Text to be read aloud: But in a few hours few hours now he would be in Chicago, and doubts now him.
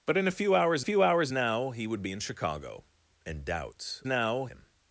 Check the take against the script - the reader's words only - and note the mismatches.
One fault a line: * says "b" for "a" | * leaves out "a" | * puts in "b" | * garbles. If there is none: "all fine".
all fine